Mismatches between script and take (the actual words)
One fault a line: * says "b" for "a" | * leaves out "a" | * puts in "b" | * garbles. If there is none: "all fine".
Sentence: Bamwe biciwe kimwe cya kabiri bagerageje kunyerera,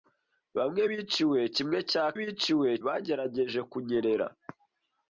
* says "biciwe" for "kabiri"